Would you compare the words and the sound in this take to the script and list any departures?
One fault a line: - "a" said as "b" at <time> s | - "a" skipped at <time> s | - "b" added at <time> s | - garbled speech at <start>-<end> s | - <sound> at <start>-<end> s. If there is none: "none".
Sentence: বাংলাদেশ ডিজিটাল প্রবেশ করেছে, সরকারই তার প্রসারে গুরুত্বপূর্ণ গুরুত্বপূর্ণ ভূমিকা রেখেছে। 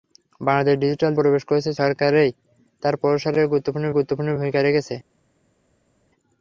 none